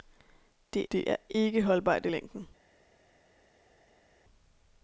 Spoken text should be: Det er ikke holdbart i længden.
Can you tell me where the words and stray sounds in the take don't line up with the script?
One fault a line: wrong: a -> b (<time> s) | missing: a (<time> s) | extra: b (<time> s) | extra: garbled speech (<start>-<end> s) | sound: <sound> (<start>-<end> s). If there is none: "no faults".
extra: det (0.9 s)